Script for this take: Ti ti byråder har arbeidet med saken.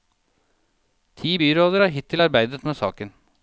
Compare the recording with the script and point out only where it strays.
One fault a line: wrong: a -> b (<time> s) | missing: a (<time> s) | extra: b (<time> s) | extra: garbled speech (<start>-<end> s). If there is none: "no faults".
missing: ti (1.4 s)
extra: hittil (1.9 s)